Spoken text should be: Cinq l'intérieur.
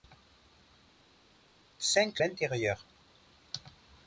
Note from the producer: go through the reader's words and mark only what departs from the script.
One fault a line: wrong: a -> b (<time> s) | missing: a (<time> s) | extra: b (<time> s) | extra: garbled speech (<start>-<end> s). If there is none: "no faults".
no faults